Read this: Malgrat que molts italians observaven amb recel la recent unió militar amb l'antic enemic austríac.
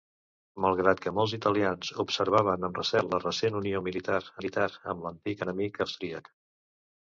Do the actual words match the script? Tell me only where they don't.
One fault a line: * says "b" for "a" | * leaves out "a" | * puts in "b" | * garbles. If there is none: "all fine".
* puts in "militar"